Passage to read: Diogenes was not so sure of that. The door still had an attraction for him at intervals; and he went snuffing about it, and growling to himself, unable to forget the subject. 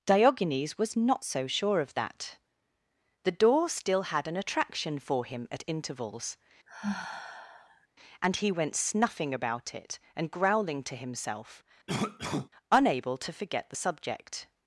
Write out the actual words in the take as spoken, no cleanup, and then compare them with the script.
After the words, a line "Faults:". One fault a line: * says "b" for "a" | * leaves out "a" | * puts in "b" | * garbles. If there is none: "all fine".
Diogenes was not so sure of that. The door still had an attraction for him at intervals; and he went snuffing about it, and growling to himself, unable to forget the subject.
Faults:
all fine